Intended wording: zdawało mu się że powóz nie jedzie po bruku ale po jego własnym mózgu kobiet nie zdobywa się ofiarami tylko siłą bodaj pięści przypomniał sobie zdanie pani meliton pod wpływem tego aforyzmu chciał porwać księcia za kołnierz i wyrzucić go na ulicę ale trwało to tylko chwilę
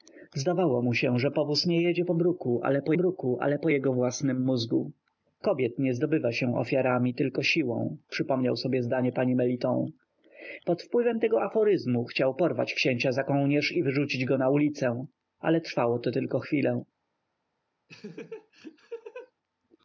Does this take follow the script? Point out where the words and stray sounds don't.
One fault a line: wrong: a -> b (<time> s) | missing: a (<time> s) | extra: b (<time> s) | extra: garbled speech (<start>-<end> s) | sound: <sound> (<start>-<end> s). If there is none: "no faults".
extra: bruku ale po (2.9 s)
missing: bodaj pięści (8.0 s)
sound: laugh (17.9-19.3 s)